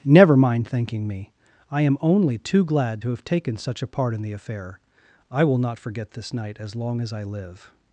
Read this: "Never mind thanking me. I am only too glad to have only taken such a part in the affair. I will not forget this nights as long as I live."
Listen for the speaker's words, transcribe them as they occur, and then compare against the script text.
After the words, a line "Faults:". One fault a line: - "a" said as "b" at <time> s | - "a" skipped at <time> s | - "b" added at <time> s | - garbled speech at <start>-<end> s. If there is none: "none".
"Never mind thanking me. I am only too glad to have taken such a part in the affair. I will not forget this night as long as I live."
Faults:
- "only" skipped at 3.2 s
- "nights" said as "night" at 6.3 s